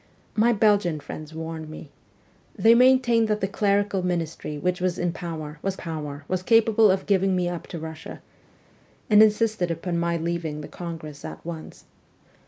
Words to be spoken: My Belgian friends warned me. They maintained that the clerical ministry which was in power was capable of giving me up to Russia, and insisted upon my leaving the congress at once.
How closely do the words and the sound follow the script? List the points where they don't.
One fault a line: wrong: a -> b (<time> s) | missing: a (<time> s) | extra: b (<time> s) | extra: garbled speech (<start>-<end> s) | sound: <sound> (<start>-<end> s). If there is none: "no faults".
extra: power was (5.7 s)